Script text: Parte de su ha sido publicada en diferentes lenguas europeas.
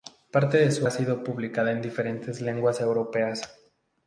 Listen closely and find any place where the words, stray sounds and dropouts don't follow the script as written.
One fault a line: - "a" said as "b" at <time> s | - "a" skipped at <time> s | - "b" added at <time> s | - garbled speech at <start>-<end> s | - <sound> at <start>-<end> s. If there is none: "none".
none